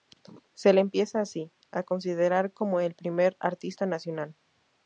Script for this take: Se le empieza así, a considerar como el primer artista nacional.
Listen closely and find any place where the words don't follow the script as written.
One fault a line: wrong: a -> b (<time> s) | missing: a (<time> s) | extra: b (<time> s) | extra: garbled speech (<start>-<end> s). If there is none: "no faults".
no faults